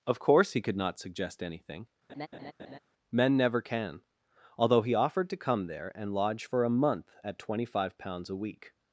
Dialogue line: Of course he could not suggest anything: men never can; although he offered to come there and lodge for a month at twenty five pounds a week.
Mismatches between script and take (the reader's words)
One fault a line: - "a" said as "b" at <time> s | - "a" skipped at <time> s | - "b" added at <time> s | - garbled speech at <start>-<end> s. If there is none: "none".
none